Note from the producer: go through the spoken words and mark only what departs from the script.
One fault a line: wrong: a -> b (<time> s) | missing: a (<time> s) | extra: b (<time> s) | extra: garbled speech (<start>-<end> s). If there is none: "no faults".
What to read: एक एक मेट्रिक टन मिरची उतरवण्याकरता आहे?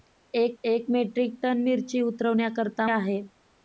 no faults